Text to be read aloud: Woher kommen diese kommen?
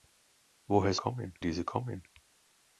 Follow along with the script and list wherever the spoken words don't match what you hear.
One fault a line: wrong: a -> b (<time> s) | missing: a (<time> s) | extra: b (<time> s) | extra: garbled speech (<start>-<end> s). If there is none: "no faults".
no faults